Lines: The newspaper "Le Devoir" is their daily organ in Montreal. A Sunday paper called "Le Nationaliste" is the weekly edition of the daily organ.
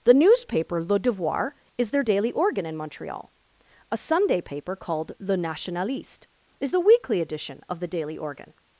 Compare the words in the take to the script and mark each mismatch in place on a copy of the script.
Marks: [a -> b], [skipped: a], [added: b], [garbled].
The newspaper "Le Devoir" is their daily organ in Montreal. A Sunday paper called "Le Nationaliste" is the weekly edition of the daily organ.